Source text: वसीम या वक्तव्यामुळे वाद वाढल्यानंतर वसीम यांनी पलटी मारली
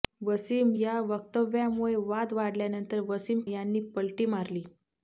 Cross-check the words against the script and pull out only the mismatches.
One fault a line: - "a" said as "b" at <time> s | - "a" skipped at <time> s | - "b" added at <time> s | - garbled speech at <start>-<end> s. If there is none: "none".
none